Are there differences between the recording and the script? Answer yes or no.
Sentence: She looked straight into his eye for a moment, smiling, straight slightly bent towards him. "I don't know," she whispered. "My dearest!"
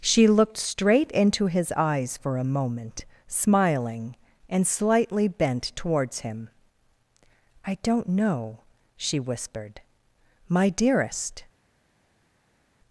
yes